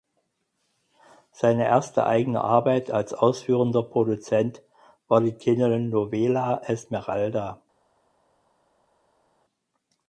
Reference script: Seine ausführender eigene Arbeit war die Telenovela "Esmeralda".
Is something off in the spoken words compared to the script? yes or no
yes